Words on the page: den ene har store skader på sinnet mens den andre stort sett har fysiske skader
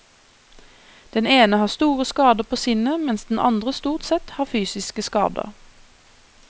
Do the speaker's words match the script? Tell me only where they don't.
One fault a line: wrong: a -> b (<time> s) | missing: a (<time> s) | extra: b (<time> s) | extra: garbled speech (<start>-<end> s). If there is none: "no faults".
no faults